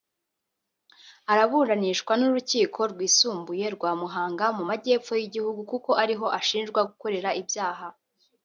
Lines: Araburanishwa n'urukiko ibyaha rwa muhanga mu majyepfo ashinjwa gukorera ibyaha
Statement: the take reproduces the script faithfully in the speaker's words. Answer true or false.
false